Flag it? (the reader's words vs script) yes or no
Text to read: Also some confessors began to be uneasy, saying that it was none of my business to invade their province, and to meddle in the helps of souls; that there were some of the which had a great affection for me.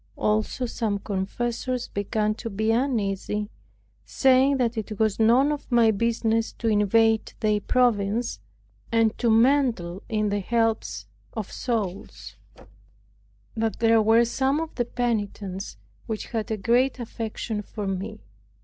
yes